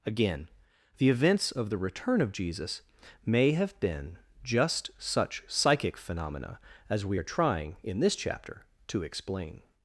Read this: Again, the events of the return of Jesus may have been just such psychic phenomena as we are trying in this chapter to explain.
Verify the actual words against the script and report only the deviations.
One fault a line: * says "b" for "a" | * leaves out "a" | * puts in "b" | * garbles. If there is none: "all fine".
all fine